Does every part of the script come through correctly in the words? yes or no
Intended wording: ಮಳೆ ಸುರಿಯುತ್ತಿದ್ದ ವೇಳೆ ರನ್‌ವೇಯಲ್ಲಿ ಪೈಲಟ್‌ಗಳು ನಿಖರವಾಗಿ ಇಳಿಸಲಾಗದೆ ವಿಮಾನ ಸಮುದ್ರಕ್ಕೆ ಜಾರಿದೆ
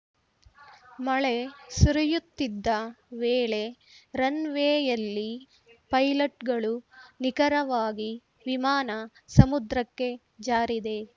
no